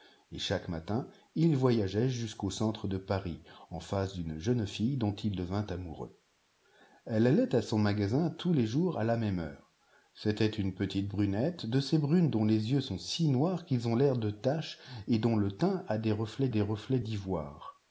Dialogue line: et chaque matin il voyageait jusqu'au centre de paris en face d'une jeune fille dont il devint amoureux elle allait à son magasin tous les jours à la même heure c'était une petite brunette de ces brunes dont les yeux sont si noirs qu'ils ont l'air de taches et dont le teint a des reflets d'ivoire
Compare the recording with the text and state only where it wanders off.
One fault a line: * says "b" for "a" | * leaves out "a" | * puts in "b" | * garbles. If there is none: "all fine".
* puts in "des reflets"